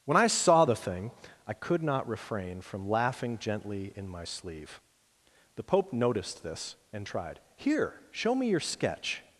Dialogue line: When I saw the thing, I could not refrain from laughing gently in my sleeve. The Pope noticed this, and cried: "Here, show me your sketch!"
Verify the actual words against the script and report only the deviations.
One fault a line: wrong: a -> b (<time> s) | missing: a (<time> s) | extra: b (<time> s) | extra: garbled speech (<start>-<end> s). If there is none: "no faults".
wrong: cried -> tried (7.1 s)